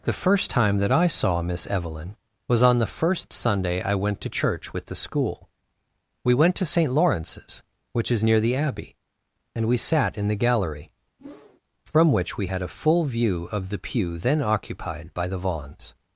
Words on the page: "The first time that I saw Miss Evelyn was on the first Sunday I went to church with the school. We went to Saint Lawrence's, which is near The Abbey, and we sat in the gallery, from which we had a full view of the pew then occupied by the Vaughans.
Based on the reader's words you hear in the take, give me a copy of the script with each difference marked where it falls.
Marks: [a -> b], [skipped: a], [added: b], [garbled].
"The first time that I saw Miss Evelyn was on the first Sunday I went to church with the school. We went to Saint Lawrence's, which is near The Abbey, and we sat in the gallery, from which we had a full view of the pew then occupied by the Vaughans.